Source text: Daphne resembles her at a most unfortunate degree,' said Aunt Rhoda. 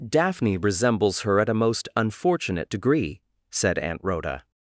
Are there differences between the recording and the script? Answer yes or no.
no